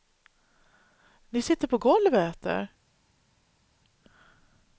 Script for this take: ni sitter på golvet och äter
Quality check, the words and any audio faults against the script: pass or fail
pass